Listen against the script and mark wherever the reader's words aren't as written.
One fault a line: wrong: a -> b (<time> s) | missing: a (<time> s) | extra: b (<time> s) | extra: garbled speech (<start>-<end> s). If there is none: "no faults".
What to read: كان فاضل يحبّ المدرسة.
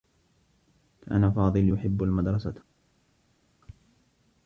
no faults